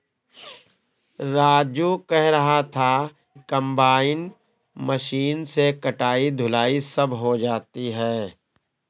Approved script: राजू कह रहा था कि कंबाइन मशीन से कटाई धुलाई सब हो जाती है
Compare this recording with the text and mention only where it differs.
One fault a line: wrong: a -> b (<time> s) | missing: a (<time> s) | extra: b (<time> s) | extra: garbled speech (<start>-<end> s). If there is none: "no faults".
missing: कि (2.9 s)